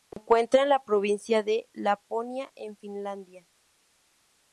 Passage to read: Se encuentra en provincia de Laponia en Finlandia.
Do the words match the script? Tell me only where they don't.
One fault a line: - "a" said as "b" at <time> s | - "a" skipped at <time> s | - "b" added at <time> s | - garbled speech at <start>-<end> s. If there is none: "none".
- "la" added at 0.7 s